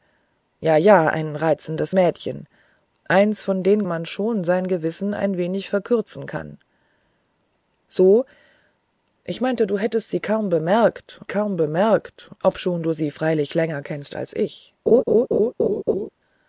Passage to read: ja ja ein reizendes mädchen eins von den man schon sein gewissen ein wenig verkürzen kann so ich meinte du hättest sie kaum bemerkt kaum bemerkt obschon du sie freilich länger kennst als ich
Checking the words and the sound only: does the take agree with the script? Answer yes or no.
no